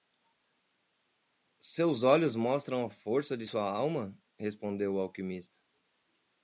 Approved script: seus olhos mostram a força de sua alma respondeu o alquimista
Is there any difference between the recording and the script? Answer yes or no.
no